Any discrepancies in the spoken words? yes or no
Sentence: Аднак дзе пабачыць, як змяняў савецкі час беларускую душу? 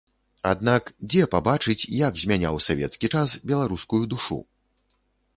no